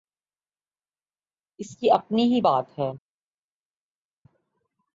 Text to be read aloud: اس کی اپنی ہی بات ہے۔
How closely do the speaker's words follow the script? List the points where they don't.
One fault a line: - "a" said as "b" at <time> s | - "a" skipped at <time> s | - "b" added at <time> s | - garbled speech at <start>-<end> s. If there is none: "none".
none